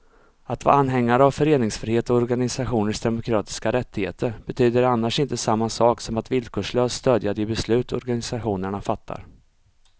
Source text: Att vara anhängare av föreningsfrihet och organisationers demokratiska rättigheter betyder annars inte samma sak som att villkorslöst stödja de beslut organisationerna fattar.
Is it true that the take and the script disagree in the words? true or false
false